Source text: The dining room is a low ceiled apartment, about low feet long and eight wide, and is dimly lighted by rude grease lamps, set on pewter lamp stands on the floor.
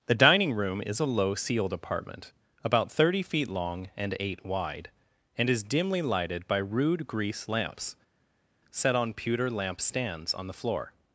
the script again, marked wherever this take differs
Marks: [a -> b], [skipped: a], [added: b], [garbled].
The dining room is a low ceiled apartment, about [low -> thirty] feet long and eight wide, and is dimly lighted by rude grease lamps, set on pewter lamp stands on the floor.